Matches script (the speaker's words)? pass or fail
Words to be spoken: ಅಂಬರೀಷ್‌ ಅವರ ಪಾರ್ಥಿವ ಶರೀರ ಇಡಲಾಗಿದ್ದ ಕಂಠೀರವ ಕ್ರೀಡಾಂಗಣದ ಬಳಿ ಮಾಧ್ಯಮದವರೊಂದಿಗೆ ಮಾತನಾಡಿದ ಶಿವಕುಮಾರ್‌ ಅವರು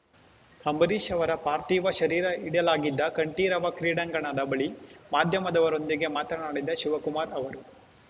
pass